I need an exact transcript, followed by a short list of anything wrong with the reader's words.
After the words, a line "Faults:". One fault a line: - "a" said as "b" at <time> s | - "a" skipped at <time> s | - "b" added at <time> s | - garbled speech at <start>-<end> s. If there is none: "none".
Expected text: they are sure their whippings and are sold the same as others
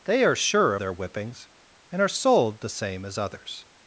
they are sure their whippings and are sold the same as others
Faults:
none